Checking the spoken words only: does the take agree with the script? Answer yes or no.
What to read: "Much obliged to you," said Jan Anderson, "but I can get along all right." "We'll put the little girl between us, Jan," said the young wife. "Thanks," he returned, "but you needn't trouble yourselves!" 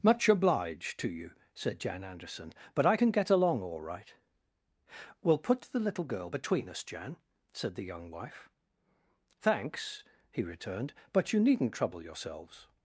yes